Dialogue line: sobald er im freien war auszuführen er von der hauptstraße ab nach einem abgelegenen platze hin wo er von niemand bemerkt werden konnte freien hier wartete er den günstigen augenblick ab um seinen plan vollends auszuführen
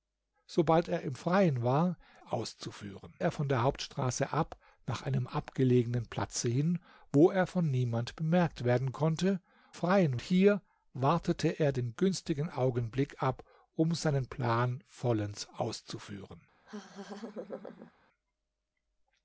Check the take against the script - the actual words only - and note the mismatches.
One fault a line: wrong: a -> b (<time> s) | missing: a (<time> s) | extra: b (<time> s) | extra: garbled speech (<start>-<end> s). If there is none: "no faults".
no faults